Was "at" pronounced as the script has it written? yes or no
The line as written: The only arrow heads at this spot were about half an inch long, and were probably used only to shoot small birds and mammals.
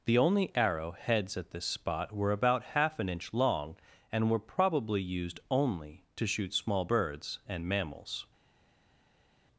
yes